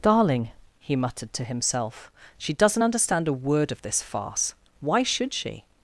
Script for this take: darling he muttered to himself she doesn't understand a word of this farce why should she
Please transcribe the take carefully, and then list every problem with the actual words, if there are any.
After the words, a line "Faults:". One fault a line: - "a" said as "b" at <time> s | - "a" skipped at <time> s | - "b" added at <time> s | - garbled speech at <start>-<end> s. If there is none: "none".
darling he muttered to himself she doesn't understand a word of this farce why should she
Faults:
none